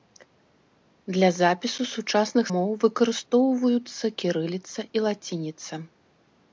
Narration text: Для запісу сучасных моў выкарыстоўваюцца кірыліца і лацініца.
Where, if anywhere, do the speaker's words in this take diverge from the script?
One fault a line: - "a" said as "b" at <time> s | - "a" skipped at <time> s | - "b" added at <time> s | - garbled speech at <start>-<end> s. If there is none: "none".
none